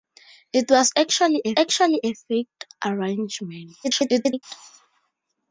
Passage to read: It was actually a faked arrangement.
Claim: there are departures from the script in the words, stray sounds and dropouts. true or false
true